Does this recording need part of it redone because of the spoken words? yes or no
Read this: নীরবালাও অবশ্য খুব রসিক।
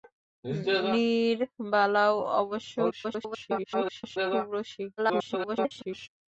yes